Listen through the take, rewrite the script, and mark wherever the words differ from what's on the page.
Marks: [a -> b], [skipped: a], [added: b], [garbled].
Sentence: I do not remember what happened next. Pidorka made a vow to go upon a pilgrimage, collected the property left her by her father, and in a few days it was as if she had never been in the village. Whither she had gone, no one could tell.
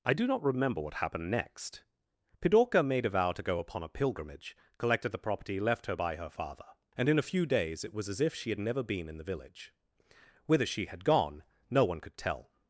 I do not remember what happened next. Pidorka made a vow to go upon a pilgrimage, collected the property left her by her father, and in a few days it was as if she had never been in the village. Whither she had gone, no one could tell.